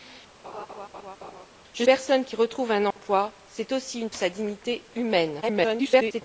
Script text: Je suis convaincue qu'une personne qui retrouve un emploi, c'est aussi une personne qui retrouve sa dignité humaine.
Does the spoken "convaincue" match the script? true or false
false